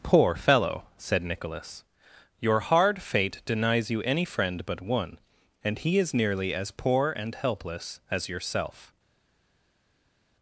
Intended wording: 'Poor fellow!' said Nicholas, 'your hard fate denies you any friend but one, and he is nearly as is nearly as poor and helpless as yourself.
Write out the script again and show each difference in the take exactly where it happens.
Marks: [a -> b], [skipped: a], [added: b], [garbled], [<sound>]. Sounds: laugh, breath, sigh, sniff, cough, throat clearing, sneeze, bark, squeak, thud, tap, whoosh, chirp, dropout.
'Poor fellow!' said Nicholas, 'your hard fate denies you any friend but one, and he is nearly as [skipped: is nearly as] poor and helpless as yourself.